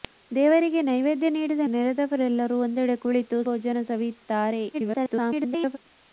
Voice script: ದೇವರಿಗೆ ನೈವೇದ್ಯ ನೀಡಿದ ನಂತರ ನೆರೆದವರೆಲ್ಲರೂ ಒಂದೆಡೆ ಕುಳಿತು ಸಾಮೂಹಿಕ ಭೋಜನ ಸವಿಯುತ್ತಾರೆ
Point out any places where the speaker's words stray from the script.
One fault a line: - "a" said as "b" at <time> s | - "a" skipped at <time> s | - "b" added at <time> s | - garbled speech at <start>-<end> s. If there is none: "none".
- "ನಂತರ" skipped at 1.6 s
- "ಸಾಮೂಹಿಕ" skipped at 3.4 s
- garbled speech at 4.7-5.8 s